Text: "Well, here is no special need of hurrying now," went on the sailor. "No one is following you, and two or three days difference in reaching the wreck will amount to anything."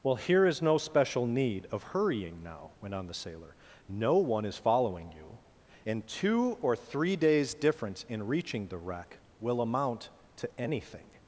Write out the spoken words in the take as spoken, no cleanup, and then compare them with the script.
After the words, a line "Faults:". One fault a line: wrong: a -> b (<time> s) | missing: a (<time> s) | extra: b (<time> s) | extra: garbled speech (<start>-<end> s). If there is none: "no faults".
"Well, here is no special need of hurrying now," went on the sailor. "No one is following you, and two or three days difference in reaching the wreck will amount to anything."
Faults:
no faults